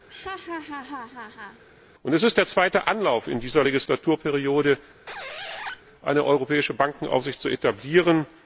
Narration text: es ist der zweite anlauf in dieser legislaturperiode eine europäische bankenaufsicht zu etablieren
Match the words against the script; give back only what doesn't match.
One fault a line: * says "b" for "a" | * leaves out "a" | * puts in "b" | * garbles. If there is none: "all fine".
all fine